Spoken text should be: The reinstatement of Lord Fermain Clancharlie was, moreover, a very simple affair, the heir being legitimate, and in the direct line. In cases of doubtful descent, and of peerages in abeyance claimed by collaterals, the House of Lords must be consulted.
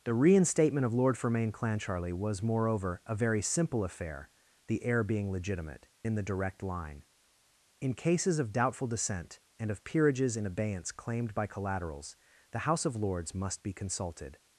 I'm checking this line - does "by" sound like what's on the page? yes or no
yes